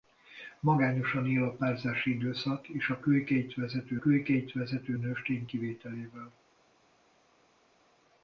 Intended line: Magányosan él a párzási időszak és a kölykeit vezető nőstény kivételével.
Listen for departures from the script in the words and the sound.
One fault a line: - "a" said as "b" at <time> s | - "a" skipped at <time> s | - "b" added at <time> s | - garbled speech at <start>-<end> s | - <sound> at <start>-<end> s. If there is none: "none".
- "kölykeit vezető" added at 4.0 s